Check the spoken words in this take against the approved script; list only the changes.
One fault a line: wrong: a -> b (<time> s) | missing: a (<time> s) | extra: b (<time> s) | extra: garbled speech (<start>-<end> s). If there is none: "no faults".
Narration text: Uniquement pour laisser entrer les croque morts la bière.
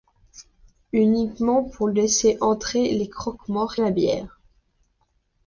no faults